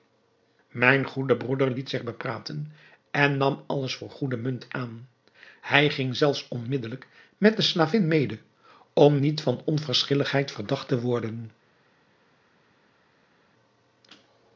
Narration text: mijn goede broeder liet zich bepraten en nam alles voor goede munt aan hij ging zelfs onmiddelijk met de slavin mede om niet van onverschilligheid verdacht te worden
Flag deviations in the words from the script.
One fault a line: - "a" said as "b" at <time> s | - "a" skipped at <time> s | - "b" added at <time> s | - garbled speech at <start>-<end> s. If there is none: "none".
none